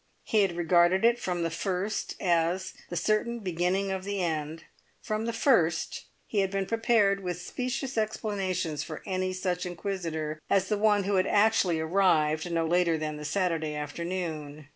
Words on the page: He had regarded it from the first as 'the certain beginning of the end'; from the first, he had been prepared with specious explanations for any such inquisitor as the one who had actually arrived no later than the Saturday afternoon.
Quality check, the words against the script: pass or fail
pass